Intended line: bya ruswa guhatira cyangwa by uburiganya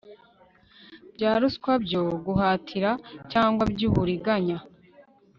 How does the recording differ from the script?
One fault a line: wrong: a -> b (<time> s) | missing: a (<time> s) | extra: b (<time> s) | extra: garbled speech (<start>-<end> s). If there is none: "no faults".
extra: byo (1.8 s)